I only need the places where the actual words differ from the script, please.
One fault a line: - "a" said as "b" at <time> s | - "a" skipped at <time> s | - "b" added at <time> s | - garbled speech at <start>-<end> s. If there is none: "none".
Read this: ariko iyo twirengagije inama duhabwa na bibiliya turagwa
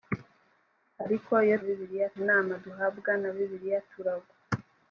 - "twirengagije" said as "bibiliya" at 1.6 s